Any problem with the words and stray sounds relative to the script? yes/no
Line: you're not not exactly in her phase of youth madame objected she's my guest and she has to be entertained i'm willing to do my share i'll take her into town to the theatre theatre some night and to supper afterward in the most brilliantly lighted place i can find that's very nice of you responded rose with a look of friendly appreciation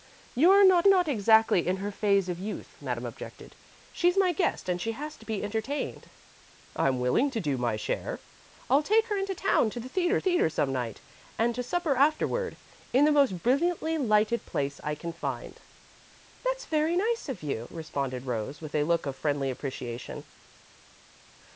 no